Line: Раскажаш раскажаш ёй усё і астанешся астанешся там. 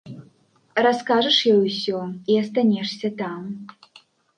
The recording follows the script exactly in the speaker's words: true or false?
false